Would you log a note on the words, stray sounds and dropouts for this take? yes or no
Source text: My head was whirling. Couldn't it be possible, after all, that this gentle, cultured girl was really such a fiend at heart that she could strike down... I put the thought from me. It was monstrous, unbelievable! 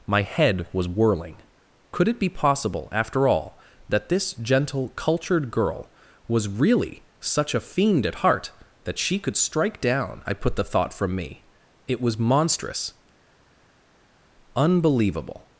yes